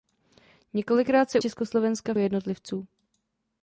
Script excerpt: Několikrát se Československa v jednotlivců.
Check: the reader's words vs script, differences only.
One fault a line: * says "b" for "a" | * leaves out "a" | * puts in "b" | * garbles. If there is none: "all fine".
all fine